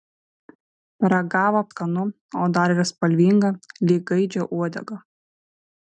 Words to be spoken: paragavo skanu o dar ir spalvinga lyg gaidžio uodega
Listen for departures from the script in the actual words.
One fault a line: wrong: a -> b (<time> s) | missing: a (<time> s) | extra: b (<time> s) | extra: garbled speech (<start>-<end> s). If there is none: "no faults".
no faults